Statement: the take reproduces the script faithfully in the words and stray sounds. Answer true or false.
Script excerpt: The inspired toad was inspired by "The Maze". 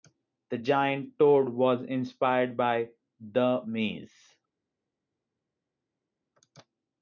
false